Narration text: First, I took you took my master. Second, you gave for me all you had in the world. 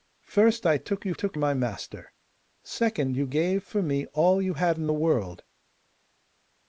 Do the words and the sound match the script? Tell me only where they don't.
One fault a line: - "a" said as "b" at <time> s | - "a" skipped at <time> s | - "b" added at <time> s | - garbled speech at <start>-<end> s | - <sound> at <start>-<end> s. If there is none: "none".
none